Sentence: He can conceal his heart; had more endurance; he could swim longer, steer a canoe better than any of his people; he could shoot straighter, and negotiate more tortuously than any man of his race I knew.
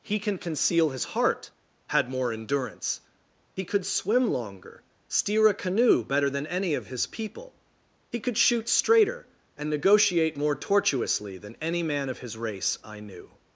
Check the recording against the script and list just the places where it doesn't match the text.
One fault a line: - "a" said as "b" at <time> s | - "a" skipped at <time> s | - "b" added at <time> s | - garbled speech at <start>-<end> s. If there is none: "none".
none